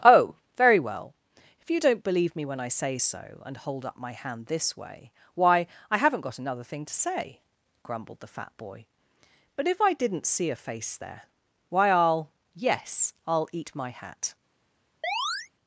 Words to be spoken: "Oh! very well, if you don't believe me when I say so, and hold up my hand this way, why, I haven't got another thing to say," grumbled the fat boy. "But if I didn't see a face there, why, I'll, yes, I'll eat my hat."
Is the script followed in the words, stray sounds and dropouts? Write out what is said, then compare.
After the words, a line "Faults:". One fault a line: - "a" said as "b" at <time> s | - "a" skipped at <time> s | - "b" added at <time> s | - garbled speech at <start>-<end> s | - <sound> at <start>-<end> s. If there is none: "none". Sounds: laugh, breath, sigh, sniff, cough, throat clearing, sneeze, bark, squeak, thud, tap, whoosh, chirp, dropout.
"Oh! very well, if you don't believe me when I say so, and hold up my hand this way, why, I haven't got another thing to say," grumbled the fat boy. "But if I didn't see a face there, why, I'll, yes, I'll eat my hat."
Faults:
- chirp at 15.0-15.5 s